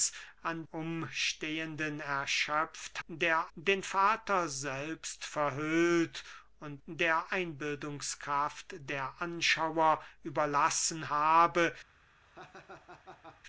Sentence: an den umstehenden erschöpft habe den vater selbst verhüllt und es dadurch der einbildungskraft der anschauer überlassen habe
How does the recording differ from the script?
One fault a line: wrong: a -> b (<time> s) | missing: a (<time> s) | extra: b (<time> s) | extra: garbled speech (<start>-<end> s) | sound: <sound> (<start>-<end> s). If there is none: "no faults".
missing: den (0.7 s)
wrong: habe -> der (3.1 s)
missing: es dadurch (6.8 s)
sound: laugh (12.2-13.4 s)